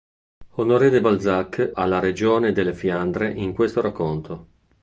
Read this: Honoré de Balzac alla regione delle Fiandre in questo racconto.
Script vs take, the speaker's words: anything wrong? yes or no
no